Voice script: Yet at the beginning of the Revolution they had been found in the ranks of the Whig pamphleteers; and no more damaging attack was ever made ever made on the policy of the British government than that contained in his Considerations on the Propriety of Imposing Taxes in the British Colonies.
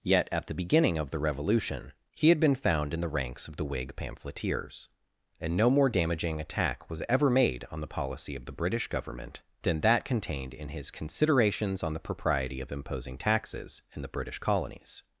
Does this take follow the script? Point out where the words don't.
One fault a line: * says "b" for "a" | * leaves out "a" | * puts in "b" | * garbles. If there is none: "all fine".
* says "he" for "they"
* leaves out "ever made"